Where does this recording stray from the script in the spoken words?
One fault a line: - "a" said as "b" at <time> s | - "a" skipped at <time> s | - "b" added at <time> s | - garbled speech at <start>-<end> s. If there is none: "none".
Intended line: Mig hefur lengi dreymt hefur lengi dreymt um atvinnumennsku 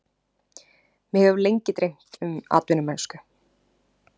- "hefur lengi dreymt" skipped at 2.2 s